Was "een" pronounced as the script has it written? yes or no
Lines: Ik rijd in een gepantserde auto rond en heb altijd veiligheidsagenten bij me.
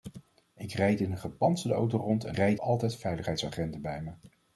yes